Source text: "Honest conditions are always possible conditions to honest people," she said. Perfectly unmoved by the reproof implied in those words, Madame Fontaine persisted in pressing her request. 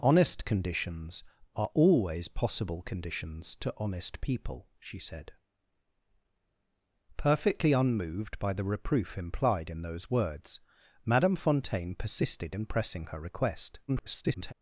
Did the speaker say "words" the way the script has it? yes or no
yes